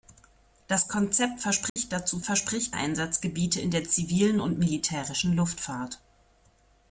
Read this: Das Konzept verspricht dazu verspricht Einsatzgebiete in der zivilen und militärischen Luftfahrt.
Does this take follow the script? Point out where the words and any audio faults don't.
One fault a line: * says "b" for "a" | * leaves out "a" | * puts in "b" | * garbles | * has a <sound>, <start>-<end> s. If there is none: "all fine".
* has a dropout, 1.7-1.8 s